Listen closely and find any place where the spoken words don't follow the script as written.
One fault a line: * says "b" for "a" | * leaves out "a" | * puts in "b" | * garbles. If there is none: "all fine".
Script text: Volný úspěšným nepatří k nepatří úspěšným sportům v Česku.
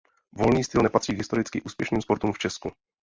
* says "styl" for "úspěšným"
* says "historicky" for "nepatří"